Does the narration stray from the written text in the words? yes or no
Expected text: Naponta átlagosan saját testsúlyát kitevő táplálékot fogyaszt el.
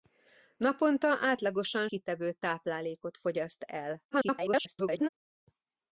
yes